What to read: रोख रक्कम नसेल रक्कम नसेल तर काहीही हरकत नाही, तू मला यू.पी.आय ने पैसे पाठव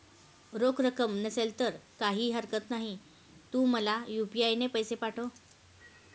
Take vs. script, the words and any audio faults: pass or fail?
fail